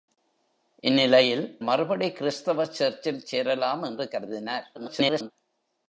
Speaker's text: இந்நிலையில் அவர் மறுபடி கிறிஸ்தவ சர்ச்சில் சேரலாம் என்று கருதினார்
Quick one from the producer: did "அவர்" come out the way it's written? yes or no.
no